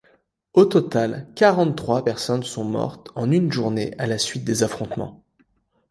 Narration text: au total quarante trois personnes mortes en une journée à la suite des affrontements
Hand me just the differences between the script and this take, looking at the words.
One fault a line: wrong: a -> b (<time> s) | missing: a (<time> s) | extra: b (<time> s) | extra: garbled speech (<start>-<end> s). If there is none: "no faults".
extra: sont (2.4 s)